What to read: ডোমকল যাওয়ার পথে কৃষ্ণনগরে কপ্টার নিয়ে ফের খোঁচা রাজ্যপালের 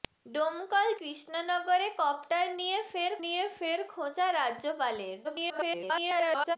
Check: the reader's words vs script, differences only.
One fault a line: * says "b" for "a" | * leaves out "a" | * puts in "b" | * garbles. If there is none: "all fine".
* says "কৃষ্ণনগরে কপ্টার নিয়ে ফের" for "যাওয়ার পথে কৃষ্ণনগরে কপ্টার"
* garbles